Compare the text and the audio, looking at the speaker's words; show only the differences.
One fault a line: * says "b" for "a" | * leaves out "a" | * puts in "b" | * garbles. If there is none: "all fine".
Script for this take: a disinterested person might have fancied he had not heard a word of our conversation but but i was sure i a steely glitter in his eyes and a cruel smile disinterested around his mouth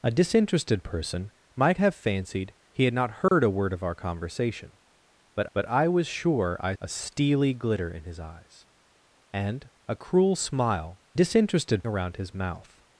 all fine